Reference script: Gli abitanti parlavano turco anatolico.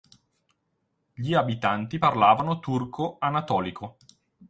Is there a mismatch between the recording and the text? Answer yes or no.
no